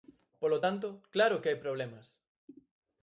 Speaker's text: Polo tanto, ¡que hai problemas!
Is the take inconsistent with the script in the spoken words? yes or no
yes